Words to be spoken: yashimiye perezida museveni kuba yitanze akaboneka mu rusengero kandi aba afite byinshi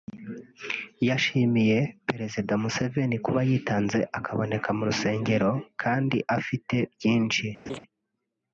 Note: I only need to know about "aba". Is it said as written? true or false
false